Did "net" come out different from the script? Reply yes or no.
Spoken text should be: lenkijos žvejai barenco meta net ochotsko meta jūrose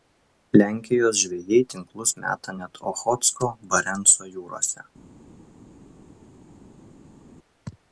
no